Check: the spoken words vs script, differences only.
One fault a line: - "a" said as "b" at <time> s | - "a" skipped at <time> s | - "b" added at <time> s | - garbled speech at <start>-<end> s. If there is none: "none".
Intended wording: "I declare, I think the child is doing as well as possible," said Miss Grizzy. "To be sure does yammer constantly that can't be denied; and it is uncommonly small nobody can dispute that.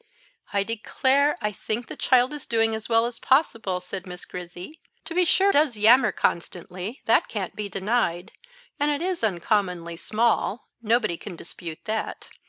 none